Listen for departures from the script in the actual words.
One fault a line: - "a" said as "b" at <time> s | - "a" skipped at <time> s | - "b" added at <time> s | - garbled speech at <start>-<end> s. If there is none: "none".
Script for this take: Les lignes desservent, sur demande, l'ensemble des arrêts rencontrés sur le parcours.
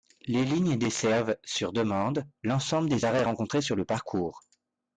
none